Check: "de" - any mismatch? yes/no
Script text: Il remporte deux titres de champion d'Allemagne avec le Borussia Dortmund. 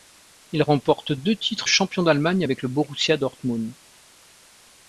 yes